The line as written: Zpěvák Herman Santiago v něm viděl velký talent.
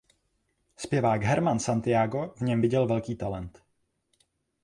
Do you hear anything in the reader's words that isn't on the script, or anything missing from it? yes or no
no